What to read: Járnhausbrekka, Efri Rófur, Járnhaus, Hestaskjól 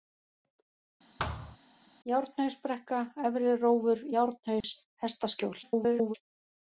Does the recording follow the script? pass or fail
fail